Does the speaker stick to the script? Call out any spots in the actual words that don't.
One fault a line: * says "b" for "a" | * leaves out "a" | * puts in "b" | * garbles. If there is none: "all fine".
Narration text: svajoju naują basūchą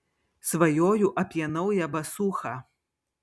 * puts in "apie"